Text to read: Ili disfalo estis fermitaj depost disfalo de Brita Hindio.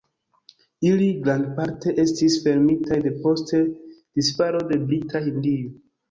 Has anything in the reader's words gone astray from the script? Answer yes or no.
yes